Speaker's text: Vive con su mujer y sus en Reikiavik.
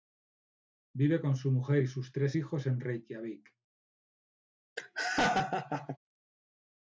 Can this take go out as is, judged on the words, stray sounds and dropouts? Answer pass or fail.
fail